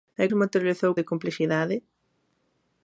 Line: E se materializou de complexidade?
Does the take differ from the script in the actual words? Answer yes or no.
no